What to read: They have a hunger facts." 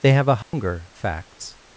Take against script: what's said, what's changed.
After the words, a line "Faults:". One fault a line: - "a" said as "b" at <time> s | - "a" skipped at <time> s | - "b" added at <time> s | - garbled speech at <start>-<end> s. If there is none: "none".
They have a hunger facts."
Faults:
none